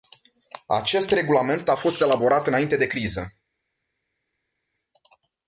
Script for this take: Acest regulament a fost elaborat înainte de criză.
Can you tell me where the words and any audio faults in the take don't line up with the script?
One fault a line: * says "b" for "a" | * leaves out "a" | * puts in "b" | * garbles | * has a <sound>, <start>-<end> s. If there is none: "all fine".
all fine